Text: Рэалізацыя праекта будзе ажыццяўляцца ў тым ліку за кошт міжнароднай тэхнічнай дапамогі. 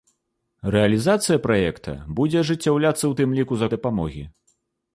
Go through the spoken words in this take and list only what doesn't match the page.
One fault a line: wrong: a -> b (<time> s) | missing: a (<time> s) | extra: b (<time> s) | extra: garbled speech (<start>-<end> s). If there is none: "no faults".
missing: кошт міжнароднай тэхнічнай (3.7 s)